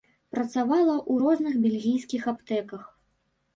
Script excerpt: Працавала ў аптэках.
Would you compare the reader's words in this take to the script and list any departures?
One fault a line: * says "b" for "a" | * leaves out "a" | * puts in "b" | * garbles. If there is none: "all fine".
* puts in "розных бельгійскіх"